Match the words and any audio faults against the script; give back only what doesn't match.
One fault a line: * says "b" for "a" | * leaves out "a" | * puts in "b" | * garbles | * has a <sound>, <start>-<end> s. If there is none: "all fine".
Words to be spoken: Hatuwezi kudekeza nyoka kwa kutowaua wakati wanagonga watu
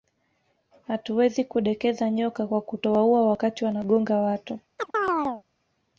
* has a chirp, 4.8-5.4 s